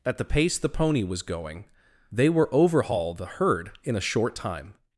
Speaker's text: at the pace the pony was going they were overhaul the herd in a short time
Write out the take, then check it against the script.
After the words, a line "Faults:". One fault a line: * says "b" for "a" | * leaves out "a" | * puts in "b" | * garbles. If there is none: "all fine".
at the pace the pony was going they were overhaul the herd in a short time
Faults:
all fine